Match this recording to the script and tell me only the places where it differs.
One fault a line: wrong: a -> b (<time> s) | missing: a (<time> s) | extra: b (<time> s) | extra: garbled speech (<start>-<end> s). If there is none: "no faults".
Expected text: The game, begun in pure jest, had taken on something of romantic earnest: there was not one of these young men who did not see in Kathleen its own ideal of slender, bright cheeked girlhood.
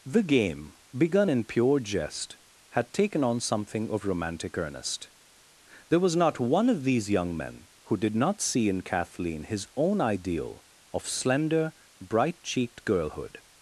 wrong: its -> his (9.4 s)